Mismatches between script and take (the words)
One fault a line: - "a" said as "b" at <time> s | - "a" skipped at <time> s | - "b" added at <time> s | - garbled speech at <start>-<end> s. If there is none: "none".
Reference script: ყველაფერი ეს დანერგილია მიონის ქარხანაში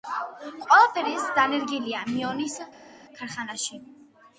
none